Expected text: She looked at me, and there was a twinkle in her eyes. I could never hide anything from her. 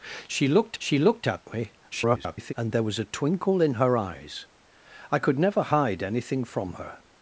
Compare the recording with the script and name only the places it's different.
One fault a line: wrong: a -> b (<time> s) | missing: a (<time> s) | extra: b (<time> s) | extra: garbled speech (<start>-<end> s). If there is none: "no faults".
extra: she looked (0.8 s)
extra: garbled speech (1.9-2.5 s)